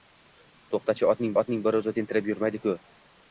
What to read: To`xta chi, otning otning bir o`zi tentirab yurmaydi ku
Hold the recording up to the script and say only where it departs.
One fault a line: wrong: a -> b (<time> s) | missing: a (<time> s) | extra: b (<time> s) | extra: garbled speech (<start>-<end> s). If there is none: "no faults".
no faults